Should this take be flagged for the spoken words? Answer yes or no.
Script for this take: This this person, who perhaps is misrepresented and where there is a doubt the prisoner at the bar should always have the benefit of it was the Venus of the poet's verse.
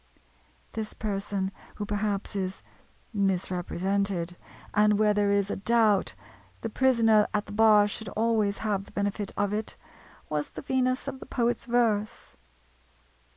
yes